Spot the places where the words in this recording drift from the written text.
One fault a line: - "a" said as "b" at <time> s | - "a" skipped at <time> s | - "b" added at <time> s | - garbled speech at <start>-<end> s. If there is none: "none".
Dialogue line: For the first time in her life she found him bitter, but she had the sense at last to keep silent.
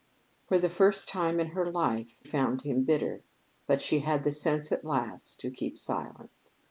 - "she" skipped at 2.2 s